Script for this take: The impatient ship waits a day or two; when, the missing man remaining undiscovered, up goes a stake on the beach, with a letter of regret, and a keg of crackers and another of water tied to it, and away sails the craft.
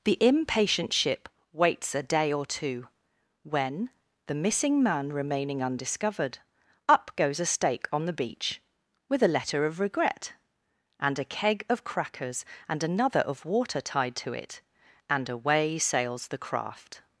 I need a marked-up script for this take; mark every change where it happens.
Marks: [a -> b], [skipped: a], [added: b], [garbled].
The impatient ship waits a day or two; when, the missing man remaining undiscovered, up goes a stake on the beach, with a letter of regret, and a keg of crackers and another of water tied to it, and away sails the craft.